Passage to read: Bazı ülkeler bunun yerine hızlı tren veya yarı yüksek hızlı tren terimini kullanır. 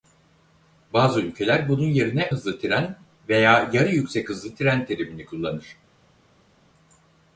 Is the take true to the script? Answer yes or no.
yes